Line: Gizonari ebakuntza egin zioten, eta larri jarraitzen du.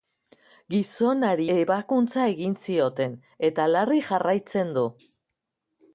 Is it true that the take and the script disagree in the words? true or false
false